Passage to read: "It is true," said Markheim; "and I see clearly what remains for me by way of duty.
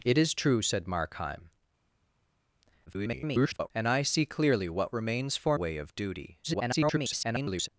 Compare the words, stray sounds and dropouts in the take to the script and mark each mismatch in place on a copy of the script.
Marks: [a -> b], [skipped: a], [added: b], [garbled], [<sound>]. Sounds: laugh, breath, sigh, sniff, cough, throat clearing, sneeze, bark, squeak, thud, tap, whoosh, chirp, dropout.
"It is true," said Markheim; [garbled] "and I see clearly what remains for [skipped: me by] way of duty. [garbled]